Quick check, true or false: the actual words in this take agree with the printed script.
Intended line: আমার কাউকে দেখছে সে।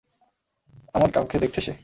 true